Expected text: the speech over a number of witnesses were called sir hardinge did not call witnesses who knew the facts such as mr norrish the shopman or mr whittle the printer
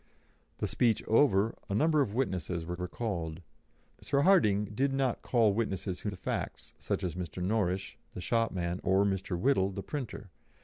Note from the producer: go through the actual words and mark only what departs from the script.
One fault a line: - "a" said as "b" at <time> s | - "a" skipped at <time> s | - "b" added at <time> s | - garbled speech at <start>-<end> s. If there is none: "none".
- "were" added at 2.8 s
- "knew" skipped at 6.1 s